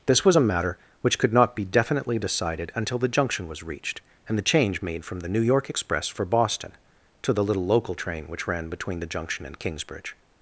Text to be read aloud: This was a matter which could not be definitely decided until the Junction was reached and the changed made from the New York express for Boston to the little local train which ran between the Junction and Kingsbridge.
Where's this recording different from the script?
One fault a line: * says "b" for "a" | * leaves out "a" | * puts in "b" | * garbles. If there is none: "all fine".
* says "change" for "changed"